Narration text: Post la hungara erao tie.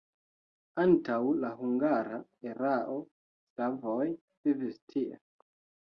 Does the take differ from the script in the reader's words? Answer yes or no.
yes